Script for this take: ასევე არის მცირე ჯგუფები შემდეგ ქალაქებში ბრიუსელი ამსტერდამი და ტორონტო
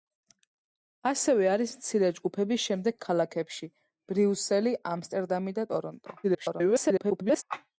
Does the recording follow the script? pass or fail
fail